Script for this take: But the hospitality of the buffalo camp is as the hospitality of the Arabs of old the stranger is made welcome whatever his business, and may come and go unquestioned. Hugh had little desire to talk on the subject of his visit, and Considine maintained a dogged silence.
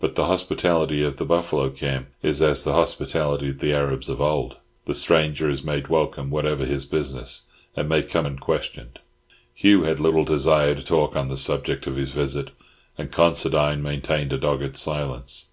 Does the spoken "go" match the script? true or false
false